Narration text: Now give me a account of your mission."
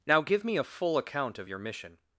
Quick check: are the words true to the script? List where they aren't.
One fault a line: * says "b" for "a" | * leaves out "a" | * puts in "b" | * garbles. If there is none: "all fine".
* puts in "full"